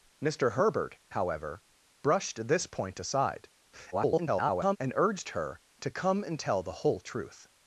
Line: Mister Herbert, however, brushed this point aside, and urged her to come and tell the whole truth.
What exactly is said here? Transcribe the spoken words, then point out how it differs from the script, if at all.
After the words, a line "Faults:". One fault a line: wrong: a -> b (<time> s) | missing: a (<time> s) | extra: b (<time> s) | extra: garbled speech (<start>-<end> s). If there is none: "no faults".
Mister Herbert, however, brushed this point aside, [garbled] and urged her to come and tell the whole truth.
Faults:
extra: garbled speech (3.9-4.8 s)